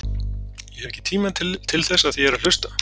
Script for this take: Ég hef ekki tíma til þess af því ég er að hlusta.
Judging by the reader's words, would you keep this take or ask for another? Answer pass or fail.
pass